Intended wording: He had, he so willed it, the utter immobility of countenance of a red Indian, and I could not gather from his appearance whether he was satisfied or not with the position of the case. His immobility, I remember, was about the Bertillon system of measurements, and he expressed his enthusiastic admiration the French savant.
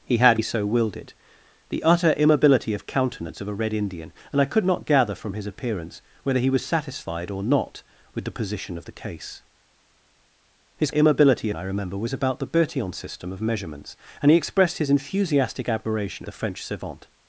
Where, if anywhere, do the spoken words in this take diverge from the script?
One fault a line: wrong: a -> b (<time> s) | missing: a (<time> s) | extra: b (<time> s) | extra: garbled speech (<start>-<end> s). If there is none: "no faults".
no faults